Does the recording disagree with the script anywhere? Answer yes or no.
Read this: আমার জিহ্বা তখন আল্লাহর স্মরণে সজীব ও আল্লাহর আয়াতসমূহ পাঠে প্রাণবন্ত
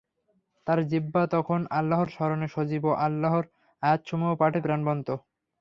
yes